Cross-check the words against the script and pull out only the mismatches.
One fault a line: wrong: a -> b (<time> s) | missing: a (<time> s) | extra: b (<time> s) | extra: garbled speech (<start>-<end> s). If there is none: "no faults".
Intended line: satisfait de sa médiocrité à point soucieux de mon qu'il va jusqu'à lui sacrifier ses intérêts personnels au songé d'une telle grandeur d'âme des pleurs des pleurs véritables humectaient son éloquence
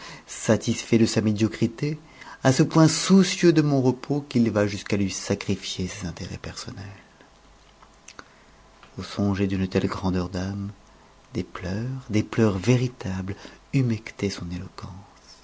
extra: ce (2.5 s)
extra: repos (3.8 s)